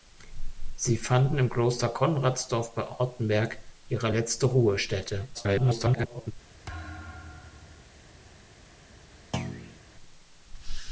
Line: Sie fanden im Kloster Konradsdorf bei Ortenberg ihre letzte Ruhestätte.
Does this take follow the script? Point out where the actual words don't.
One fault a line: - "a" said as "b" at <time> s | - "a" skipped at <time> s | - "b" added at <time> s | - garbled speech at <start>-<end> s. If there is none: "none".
- garbled speech at 5.3-6.3 s